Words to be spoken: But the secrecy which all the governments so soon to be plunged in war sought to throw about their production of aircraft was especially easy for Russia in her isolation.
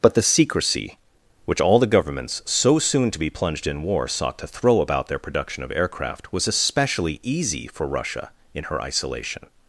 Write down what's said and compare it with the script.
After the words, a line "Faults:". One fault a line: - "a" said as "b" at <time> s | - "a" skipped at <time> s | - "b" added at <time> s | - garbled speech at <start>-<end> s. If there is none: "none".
But the secrecy which all the governments so soon to be plunged in war sought to throw about their production of aircraft was especially easy for Russia in her isolation.
Faults:
none